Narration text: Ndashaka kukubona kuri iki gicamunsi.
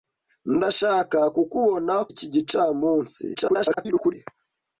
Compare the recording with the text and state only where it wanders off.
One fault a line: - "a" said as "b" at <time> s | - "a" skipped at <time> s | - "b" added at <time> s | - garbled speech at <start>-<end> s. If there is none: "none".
- "kuri" skipped at 1.9 s
- garbled speech at 3.3-4.1 s